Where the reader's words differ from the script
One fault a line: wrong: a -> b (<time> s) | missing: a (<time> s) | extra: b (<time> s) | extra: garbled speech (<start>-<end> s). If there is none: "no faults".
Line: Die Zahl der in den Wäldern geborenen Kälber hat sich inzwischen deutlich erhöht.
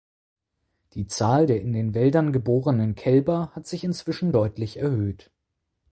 no faults